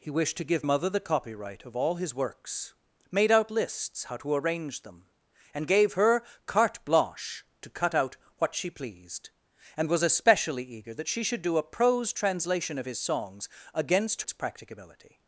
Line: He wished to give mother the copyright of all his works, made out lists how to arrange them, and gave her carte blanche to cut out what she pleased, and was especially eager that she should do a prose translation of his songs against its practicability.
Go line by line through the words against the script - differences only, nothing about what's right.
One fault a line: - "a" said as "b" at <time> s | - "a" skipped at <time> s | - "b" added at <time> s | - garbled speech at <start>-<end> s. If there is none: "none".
none